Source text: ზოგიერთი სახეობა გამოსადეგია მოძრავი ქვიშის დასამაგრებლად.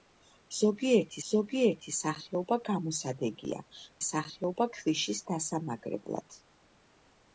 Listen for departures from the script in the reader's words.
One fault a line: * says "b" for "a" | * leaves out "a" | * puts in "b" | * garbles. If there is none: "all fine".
* puts in "ზოგიერთი"
* says "სახეობა" for "მოძრავი"